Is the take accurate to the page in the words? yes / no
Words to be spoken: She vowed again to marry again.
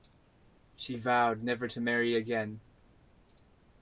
no